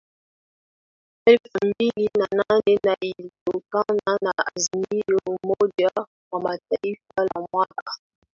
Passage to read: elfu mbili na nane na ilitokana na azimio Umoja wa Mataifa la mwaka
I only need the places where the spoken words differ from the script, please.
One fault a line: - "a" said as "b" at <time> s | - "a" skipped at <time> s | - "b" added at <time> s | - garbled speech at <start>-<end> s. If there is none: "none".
none